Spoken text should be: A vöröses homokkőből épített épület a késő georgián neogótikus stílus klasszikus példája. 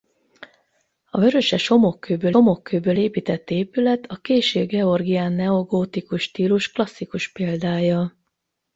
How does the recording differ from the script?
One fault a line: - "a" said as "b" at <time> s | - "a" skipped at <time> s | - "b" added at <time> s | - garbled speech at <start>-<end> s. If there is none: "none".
- "homokkőből" added at 2.3 s